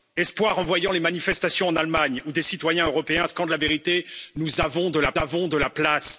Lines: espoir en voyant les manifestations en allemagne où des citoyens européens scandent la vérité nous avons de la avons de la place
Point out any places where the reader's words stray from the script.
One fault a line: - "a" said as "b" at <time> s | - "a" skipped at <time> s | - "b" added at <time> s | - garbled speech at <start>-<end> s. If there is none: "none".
none